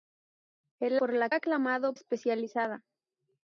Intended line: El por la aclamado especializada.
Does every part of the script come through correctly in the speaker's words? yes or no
yes